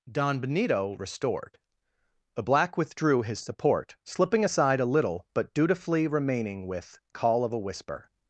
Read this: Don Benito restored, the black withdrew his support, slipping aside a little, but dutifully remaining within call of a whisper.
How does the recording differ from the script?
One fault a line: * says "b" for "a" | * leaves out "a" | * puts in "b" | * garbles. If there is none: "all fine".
* says "with" for "within"